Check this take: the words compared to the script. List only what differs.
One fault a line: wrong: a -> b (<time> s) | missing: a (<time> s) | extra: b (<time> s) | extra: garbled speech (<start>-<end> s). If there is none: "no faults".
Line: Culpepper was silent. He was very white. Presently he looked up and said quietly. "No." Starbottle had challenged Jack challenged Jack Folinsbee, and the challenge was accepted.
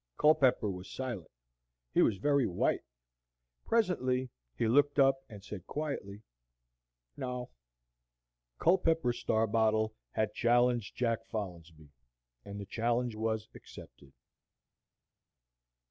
extra: Culpepper (8.6 s)
missing: challenged Jack (11.2 s)